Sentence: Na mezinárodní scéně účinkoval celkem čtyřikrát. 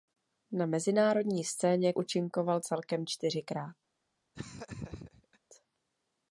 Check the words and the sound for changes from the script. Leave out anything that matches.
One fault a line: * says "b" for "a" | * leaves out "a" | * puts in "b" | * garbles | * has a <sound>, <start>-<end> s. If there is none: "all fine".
* has a laugh, 4.3-5.4 s